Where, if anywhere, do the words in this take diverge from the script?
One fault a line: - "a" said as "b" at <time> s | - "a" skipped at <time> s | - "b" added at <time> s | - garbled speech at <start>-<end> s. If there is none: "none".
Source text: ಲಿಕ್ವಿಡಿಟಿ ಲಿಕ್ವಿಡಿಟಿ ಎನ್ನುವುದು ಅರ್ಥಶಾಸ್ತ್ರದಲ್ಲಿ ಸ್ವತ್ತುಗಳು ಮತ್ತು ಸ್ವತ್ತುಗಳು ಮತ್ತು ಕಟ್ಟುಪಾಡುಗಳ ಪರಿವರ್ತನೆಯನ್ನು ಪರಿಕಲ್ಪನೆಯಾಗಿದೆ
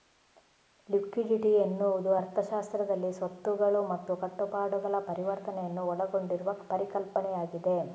- "ಲಿಕ್ವಿಡಿಟಿ" skipped at 1.5 s
- "ಸ್ವತ್ತುಗಳು ಮತ್ತು" skipped at 4.1 s
- "ಒಳಗೊಂಡಿರುವ" added at 5.9 s